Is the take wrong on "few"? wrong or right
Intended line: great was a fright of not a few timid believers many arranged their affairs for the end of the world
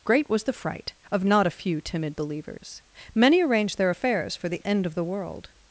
right